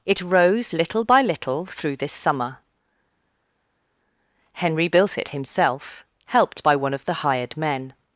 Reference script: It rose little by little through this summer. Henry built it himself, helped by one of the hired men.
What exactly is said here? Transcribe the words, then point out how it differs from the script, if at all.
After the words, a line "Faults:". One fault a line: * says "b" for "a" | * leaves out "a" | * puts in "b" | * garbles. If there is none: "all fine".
It rose little by little through this summer. Henry built it himself, helped by one of the hired men.
Faults:
all fine